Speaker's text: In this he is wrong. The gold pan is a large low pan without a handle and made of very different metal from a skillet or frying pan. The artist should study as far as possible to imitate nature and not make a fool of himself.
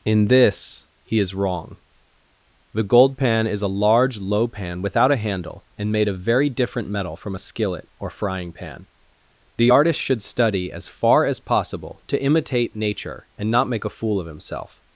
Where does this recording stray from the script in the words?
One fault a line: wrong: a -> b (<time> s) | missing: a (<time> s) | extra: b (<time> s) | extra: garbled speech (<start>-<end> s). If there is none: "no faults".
no faults